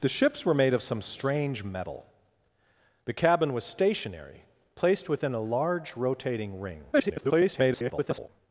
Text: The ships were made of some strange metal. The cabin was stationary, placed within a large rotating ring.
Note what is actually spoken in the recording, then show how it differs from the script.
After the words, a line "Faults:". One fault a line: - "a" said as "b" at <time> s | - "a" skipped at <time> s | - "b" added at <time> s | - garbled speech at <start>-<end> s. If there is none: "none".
The ships were made of some strange metal. The cabin was stationary, placed within a large rotating ring. [garbled]
Faults:
- garbled speech at 6.9-8.3 s